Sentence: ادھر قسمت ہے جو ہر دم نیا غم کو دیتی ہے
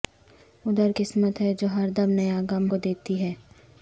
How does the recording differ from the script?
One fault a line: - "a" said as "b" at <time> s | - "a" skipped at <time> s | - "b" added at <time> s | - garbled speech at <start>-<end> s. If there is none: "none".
none